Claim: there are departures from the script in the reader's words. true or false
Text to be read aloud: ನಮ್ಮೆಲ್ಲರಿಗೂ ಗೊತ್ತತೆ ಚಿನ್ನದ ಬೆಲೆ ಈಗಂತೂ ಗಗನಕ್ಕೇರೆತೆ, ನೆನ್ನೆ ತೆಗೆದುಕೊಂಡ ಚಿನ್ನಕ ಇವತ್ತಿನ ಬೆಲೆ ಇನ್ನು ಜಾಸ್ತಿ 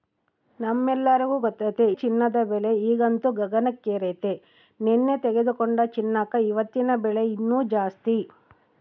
false